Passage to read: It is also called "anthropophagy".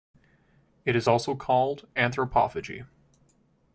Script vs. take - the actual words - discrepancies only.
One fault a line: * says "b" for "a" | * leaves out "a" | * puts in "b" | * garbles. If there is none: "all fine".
all fine